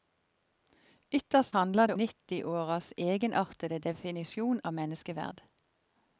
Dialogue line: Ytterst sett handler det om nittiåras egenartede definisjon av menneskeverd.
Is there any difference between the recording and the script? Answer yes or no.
yes